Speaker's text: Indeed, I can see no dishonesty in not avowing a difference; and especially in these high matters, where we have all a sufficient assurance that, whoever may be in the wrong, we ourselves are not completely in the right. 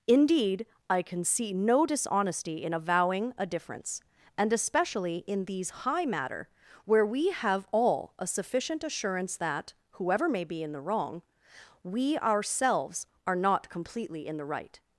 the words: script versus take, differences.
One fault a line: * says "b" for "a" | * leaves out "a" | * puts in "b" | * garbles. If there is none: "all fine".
* leaves out "not"
* says "matter" for "matters"